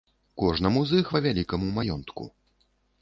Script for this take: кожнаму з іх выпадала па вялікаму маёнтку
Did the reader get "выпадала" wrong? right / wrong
wrong